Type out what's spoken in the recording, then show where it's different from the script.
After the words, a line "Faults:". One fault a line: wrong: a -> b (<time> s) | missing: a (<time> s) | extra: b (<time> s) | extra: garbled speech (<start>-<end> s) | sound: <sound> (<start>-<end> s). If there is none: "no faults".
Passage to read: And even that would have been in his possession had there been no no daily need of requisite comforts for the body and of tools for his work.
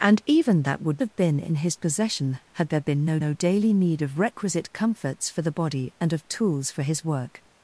And even that would have been in his possession had there been no no daily need of requisite comforts for the body and of tools for his work.
Faults:
no faults